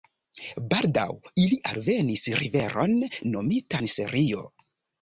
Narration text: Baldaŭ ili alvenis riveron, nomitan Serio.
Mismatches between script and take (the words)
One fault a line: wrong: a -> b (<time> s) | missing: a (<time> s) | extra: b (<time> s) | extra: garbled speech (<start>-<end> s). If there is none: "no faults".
no faults